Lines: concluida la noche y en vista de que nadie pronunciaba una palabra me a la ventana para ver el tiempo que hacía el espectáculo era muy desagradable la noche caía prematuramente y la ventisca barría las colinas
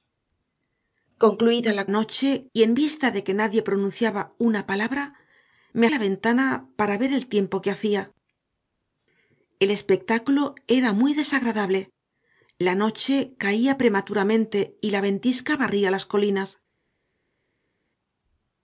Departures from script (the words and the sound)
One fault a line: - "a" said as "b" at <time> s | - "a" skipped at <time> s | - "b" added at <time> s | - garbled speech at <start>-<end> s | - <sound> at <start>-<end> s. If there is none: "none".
none